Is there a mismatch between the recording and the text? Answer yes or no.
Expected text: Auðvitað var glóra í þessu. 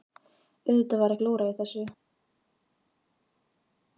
no